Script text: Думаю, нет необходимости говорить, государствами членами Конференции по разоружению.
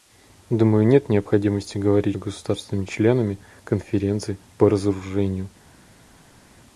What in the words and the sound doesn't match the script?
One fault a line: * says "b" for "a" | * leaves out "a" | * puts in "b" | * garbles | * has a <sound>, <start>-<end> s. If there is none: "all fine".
all fine